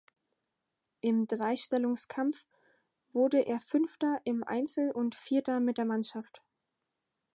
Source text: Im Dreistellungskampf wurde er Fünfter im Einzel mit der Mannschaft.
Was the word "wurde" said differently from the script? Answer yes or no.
no